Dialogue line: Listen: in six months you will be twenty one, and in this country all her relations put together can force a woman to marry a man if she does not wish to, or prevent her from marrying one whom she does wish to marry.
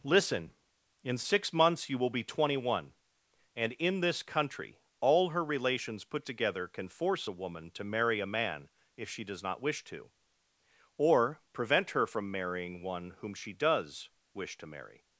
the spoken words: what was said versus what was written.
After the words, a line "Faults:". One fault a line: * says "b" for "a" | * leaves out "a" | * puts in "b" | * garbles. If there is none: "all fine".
Listen: in six months you will be twenty one, and in this country all her relations put together can force a woman to marry a man if she does not wish to, or prevent her from marrying one whom she does wish to marry.
Faults:
all fine